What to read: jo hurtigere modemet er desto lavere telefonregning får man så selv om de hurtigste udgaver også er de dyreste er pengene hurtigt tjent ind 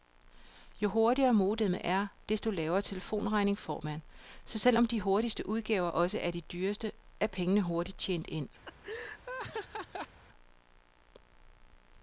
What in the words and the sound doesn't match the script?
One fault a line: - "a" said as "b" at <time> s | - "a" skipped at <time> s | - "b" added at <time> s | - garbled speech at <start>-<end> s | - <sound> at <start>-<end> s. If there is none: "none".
- laugh at 8.7-10.2 s